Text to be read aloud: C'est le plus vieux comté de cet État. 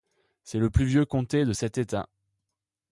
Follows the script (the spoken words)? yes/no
yes